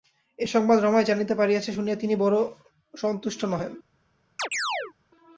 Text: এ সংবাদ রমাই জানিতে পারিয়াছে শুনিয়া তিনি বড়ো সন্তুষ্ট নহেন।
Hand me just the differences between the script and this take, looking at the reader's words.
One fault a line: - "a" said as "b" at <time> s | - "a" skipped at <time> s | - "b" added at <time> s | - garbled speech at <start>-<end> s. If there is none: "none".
none